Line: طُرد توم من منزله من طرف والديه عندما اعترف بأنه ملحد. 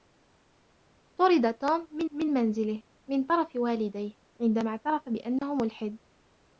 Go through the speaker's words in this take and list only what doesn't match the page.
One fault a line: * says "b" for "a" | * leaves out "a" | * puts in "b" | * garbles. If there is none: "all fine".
* puts in "من"